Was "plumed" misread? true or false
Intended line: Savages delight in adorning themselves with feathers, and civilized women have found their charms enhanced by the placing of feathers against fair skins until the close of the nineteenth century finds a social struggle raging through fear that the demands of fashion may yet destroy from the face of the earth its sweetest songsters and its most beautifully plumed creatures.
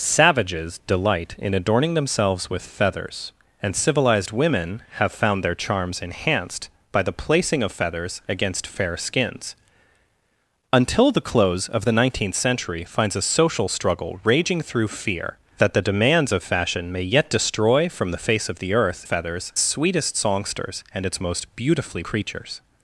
true